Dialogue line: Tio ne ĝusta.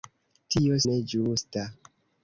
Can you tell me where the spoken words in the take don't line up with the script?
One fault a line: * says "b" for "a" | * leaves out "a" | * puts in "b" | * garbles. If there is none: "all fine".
all fine